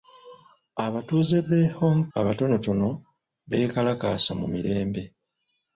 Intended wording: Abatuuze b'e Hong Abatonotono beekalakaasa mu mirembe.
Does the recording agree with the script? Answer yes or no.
yes